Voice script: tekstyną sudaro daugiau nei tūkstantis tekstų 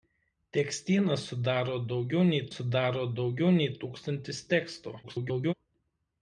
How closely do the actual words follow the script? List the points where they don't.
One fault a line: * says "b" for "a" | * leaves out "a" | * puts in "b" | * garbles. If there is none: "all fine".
* puts in "sudaro daugiau nei"
* garbles